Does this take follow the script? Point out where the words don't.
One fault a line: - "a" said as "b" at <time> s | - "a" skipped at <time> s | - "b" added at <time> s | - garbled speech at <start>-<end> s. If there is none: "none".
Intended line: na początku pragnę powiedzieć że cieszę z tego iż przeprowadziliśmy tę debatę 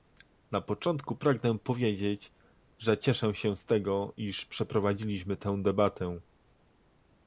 - "się" added at 3.3 s